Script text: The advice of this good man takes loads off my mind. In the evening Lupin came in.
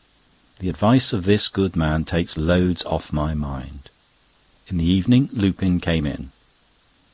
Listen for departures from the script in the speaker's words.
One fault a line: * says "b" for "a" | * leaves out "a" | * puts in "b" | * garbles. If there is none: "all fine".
all fine